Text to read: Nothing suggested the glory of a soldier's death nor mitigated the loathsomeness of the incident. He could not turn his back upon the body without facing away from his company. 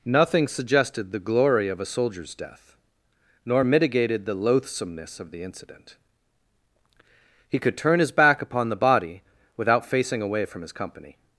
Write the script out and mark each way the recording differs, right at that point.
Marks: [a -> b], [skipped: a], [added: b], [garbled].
Nothing suggested the glory of a soldier's death nor mitigated the loathsomeness of the incident. He could [skipped: not] turn his back upon the body without facing away from his company.